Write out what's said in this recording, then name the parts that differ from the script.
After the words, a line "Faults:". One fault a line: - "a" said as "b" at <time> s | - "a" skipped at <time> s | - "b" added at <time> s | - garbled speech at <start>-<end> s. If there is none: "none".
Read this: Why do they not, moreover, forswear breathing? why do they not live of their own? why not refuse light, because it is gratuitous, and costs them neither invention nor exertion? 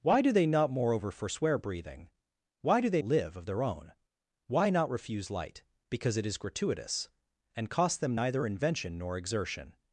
Why do they not, moreover, forswear breathing? why do they live of their own? why not refuse light, because it is gratuitous, and costs them neither invention nor exertion?
Faults:
- "not" skipped at 3.0 s